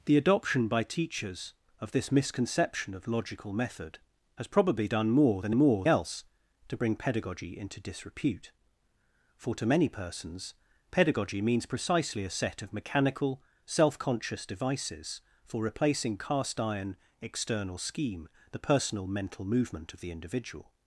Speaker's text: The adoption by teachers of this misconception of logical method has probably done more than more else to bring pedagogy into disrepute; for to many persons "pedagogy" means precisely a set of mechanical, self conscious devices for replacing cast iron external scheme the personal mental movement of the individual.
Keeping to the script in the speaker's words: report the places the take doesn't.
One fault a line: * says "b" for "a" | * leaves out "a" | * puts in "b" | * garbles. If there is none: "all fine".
all fine